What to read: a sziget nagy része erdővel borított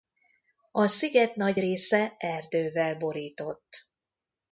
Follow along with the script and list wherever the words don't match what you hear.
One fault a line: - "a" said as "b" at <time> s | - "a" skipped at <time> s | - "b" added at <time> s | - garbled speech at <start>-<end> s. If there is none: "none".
none